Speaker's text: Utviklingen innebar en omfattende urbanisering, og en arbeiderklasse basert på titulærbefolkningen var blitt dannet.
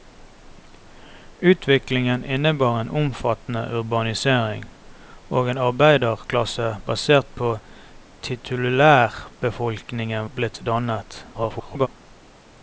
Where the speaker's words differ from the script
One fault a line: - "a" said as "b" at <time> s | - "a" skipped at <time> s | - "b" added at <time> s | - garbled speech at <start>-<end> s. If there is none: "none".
- "var" skipped at 10.3 s
- garbled speech at 11.3-11.9 s